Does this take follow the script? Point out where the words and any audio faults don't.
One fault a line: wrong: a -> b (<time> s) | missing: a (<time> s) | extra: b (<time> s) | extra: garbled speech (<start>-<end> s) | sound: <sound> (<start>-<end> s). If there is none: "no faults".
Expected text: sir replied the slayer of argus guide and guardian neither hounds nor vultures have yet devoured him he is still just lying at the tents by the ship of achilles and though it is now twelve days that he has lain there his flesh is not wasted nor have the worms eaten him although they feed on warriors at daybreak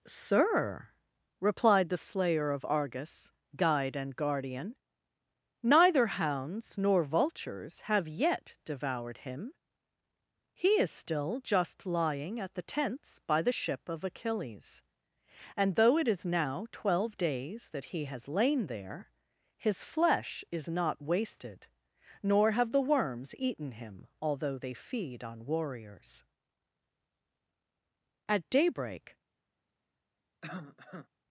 sound: cough (30.4-31.1 s)